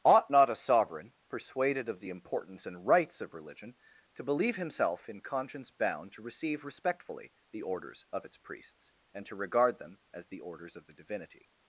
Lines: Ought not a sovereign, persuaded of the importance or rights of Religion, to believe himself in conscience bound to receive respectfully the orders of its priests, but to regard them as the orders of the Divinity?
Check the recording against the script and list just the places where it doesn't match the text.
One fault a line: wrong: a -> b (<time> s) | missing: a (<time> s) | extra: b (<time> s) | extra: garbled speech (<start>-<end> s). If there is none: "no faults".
wrong: or -> and (2.7 s)
wrong: but -> and (9.1 s)